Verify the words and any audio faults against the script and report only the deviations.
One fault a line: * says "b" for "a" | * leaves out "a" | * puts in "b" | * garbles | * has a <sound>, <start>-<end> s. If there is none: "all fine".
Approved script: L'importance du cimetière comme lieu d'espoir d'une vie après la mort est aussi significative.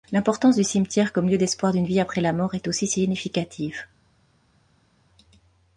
all fine